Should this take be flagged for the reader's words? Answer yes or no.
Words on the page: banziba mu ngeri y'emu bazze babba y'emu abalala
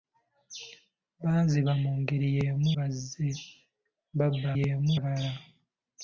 no